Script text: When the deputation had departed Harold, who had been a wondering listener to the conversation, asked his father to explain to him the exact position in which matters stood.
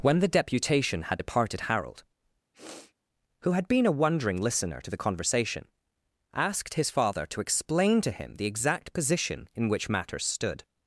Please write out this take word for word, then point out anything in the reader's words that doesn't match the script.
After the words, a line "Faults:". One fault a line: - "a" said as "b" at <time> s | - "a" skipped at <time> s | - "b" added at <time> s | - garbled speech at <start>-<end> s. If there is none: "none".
When the deputation had departed Harold, who had been a wondering listener to the conversation, asked his father to explain to him the exact position in which matters stood.
Faults:
none